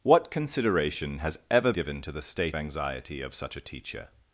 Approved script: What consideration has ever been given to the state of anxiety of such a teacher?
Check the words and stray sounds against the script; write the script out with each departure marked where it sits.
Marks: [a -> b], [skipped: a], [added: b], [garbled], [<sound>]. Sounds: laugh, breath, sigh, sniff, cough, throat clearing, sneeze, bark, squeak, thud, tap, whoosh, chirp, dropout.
What consideration has ever [skipped: been] given to the state [skipped: of] anxiety of such a teacher?